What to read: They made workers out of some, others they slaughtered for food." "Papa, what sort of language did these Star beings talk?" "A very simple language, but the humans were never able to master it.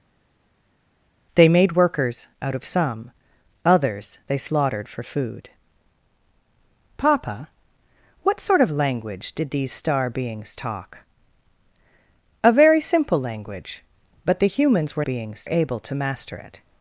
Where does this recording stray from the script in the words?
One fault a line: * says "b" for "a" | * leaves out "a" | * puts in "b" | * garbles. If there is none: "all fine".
* says "beings" for "never"